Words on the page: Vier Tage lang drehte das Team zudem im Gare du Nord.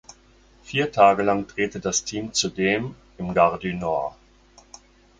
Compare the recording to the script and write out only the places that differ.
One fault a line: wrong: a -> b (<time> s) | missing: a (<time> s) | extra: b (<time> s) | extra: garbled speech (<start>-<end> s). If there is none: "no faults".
no faults